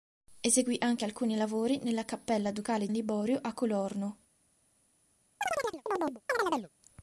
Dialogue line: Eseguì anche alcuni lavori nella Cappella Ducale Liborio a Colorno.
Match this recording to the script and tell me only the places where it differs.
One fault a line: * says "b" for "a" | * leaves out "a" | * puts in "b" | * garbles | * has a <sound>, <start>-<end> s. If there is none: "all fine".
* has a chirp, 5.4-6.7 s